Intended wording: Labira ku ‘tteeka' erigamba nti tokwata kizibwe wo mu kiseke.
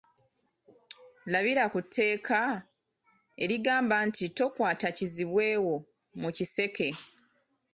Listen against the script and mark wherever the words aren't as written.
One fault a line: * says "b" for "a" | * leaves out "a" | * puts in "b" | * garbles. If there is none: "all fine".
all fine